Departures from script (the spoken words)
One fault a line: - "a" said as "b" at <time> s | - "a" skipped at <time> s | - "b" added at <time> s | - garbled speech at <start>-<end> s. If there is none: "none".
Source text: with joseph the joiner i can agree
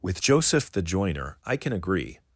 none